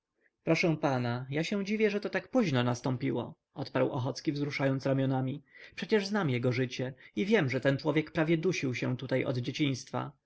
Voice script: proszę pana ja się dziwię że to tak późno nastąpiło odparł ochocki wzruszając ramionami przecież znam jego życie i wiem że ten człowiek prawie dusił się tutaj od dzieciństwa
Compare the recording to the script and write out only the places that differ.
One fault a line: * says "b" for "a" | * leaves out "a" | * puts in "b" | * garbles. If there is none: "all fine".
all fine